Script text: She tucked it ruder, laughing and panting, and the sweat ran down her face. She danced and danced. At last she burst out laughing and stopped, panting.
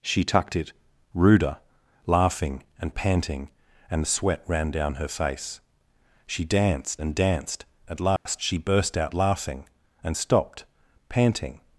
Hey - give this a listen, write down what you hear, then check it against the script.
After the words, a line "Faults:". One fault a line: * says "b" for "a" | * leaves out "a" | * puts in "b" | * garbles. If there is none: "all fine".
She tucked it ruder, laughing and panting, and the sweat ran down her face. She danced and danced. At last she burst out laughing and stopped, panting.
Faults:
all fine